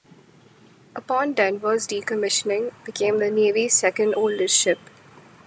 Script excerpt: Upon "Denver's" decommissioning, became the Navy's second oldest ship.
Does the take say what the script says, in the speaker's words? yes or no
yes